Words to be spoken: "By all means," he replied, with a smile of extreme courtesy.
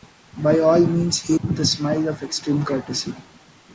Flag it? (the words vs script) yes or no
yes